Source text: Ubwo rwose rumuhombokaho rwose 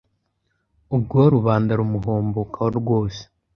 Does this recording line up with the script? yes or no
no